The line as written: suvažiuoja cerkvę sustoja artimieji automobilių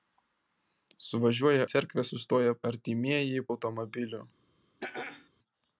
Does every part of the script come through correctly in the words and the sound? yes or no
no